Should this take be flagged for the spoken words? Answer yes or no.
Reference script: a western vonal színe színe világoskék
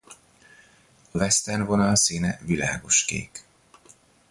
yes